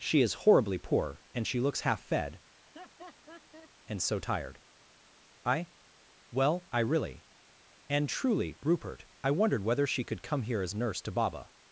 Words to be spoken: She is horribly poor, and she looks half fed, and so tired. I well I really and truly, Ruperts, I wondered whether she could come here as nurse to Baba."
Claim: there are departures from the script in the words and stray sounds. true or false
true